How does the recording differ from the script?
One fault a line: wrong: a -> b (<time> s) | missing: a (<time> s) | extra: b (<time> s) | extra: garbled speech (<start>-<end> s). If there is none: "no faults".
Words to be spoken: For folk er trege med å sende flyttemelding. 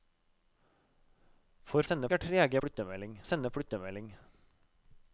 wrong: folk -> sende (1.9 s)
wrong: med -> flyttemelding (2.6 s)